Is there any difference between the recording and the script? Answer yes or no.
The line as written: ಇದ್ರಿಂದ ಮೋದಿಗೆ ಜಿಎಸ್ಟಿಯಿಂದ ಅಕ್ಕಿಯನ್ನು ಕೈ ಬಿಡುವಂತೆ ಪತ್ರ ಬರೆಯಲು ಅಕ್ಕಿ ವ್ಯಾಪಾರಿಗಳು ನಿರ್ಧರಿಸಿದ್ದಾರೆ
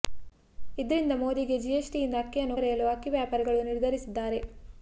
yes